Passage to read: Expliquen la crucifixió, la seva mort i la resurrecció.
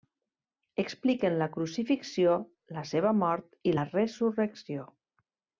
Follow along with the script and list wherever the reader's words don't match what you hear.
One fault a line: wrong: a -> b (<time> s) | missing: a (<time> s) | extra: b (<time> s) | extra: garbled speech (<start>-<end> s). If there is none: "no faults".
no faults